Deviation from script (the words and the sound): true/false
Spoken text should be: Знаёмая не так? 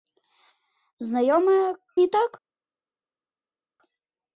false